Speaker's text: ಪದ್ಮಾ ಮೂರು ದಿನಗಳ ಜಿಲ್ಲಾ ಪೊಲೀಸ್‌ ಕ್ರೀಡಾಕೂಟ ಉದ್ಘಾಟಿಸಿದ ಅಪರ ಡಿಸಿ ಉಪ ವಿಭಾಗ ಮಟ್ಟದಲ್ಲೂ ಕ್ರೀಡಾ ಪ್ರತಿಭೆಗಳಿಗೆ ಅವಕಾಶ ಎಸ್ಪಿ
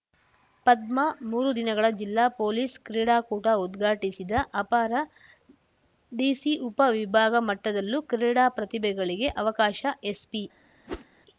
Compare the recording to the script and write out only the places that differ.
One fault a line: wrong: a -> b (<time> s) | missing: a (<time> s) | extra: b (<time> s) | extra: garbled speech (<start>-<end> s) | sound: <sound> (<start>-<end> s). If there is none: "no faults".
sound: whoosh (10.9-11.1 s)